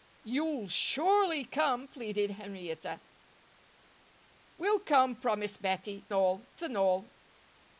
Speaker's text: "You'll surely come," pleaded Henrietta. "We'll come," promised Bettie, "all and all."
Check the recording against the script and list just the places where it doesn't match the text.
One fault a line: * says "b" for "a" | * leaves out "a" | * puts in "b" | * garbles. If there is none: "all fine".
all fine